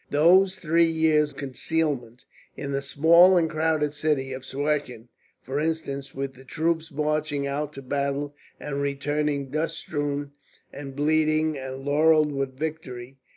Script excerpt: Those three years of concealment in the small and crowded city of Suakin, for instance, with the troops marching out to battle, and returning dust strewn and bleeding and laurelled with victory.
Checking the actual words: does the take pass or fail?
fail